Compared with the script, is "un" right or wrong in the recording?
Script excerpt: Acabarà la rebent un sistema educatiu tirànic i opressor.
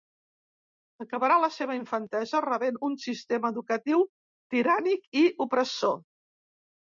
right